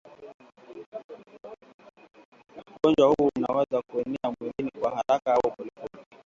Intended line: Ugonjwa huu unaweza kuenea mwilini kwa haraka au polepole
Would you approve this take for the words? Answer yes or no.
yes